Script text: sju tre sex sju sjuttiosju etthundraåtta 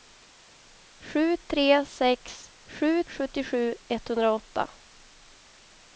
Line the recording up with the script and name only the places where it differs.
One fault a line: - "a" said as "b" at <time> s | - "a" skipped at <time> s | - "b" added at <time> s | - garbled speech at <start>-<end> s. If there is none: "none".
none